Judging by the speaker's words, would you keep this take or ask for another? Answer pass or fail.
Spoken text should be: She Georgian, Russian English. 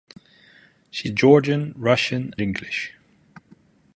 pass